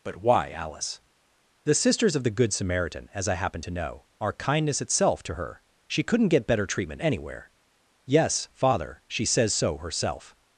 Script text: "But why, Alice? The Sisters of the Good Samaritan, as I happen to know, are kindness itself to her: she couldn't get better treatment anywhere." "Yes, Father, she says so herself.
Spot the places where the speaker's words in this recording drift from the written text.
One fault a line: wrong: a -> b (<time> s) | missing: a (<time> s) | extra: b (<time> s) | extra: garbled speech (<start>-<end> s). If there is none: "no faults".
no faults